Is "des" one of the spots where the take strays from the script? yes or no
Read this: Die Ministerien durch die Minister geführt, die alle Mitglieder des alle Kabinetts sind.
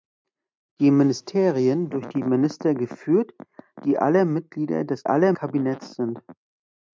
no